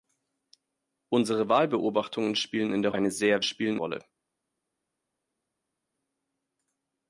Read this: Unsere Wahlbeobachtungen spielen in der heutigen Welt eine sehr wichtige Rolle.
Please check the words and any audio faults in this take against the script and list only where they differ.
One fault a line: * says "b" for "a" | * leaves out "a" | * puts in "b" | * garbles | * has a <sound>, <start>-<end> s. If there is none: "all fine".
* leaves out "heutigen Welt"
* says "spielen" for "wichtige"